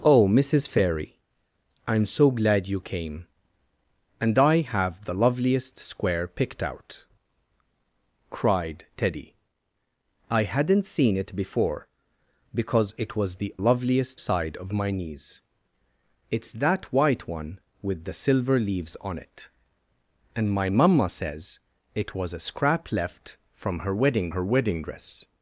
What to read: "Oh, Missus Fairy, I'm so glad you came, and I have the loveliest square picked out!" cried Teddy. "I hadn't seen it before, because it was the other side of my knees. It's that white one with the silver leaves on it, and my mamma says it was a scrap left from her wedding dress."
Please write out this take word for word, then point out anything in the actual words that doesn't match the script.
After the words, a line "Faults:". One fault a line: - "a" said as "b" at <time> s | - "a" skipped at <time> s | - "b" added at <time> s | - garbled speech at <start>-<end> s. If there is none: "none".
"Oh, Missus Fairy, I'm so glad you came, and I have the loveliest square picked out!" cried Teddy. "I hadn't seen it before, because it was the loveliest side of my knees. It's that white one with the silver leaves on it, and my mamma says it was a scrap left from her wedding her wedding dress."
Faults:
- "other" said as "loveliest" at 13.6 s
- "her wedding" added at 24.3 s